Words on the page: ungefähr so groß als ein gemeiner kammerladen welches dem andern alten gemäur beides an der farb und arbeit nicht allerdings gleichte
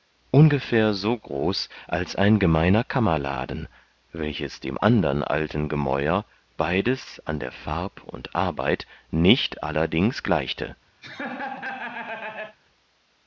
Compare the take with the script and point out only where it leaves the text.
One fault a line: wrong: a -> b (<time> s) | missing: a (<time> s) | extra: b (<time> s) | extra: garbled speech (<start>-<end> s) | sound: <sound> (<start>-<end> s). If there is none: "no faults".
sound: laugh (11.0-12.6 s)